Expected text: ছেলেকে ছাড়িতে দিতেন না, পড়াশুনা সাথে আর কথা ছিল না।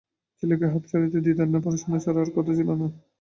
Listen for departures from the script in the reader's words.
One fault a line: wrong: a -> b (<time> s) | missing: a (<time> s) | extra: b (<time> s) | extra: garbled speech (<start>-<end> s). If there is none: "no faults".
extra: হাঁপ (0.7 s)
wrong: সাথে -> ছাড়া (2.0 s)